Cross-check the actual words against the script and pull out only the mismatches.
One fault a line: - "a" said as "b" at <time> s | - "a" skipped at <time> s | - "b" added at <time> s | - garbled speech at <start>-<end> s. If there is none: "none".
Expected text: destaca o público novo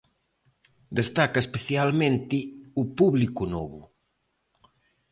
- "especialmente" added at 1.4 s